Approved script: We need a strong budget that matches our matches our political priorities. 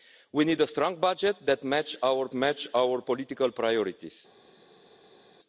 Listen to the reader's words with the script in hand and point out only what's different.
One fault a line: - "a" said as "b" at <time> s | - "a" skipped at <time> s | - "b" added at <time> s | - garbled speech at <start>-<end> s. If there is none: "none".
none